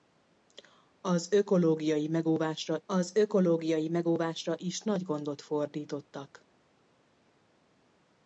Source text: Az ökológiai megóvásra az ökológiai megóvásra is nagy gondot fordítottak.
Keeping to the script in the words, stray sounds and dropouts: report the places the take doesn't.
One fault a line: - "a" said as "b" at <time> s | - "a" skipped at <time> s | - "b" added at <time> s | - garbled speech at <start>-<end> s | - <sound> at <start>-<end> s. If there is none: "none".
none